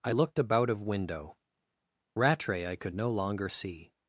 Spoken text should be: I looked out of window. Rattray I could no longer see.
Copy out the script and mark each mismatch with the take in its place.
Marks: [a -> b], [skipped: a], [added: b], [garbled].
I looked [out -> about] of window. Rattray I could no longer see.